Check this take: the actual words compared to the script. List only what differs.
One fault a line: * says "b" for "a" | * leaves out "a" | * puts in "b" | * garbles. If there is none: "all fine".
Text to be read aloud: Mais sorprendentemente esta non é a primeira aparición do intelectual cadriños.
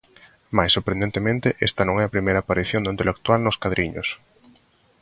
* puts in "nos"